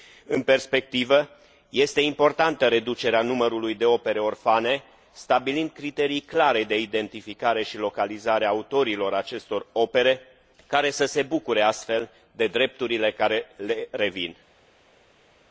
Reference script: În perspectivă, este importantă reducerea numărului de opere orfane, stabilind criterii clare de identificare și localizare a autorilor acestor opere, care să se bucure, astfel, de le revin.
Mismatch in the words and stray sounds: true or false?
true